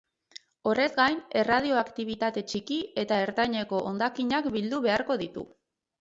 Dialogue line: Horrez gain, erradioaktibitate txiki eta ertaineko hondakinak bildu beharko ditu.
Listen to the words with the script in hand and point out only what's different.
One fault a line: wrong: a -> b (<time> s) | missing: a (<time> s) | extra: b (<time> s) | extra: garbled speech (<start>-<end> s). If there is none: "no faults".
no faults